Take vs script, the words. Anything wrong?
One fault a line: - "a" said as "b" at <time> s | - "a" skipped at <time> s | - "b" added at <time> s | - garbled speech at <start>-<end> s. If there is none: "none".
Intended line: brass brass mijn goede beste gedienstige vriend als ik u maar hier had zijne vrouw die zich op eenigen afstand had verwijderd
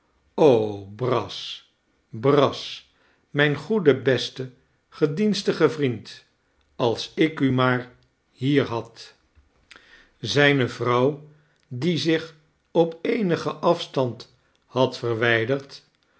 none